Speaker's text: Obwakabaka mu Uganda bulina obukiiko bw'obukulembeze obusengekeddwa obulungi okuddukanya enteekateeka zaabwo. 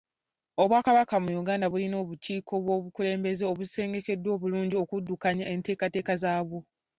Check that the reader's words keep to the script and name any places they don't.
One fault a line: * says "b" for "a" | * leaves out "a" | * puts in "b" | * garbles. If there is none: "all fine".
all fine